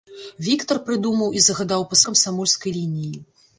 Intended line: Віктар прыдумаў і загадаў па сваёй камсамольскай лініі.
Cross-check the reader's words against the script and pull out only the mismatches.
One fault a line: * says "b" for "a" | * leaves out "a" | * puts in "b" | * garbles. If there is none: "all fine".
* leaves out "сваёй"